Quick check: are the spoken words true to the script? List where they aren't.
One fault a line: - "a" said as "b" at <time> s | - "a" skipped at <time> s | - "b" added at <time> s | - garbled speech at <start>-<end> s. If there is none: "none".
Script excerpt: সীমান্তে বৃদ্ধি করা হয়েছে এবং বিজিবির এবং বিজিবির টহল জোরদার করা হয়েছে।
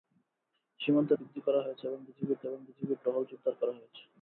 none